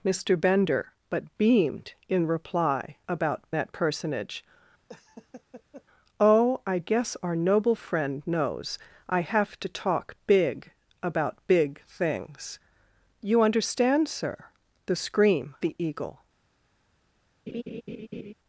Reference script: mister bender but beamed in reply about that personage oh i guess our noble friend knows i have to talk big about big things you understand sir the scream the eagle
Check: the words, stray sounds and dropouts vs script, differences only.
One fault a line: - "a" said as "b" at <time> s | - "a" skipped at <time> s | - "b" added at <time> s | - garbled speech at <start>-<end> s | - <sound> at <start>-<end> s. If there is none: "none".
- laugh at 4.9-5.8 s
- laugh at 17.5-18.3 s